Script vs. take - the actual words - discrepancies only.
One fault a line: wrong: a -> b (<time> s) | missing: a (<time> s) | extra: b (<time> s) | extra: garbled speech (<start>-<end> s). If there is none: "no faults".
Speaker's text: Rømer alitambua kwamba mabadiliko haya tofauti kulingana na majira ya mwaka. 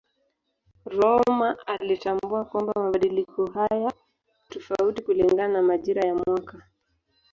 no faults